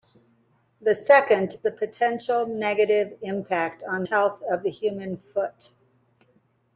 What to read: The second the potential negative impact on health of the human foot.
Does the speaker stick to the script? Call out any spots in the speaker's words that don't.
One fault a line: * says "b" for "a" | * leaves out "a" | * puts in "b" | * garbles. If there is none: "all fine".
all fine